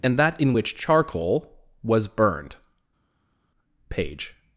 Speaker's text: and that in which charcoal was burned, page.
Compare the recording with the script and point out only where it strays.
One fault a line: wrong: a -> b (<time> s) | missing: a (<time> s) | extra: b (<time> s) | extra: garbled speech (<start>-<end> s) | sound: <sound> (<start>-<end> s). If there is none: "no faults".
no faults